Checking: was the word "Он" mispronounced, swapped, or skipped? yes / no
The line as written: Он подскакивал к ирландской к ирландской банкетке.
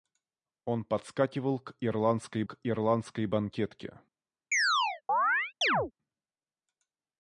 no